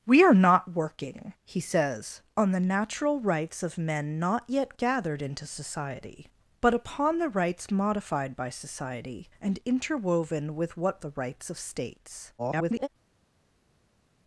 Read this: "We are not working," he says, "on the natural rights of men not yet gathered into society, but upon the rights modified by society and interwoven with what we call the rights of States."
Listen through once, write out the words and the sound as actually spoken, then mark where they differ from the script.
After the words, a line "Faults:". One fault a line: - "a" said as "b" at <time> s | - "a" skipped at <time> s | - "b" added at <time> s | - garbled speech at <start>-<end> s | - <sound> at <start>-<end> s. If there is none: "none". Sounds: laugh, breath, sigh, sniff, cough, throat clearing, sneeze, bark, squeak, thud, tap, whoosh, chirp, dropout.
"We are not working," he says, "on the natural rights of men not yet gathered into society, but upon the rights modified by society and interwoven with what the rights of States." [garbled]
Faults:
- "we call" skipped at 11.0 s
- garbled speech at 12.4-12.9 s